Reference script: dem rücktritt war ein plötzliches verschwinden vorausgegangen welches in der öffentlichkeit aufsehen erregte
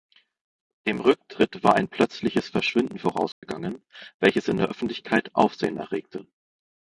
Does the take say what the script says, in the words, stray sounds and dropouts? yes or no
no